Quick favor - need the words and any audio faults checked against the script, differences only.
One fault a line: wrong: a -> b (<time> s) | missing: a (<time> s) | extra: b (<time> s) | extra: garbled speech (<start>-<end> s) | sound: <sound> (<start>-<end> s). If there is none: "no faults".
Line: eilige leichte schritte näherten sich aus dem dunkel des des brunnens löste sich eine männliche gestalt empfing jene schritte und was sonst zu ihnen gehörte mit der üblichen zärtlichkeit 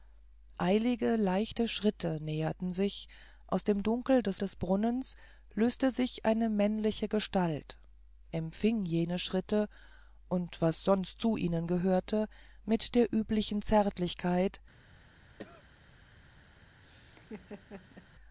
sound: cough (15.4-15.7 s)
sound: laugh (16.8-18.1 s)